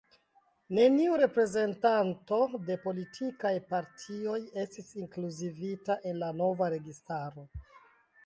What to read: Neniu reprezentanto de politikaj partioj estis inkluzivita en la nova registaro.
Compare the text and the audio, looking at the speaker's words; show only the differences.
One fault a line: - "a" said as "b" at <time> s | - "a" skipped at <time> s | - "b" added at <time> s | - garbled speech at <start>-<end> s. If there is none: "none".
none